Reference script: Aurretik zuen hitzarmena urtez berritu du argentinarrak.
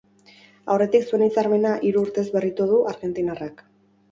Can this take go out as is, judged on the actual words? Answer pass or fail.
fail